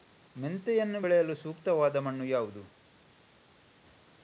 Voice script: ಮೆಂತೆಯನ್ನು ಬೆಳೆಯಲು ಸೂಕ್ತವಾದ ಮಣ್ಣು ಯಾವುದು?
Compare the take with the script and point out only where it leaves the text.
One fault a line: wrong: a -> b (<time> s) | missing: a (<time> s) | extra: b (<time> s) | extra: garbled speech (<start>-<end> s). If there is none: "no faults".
no faults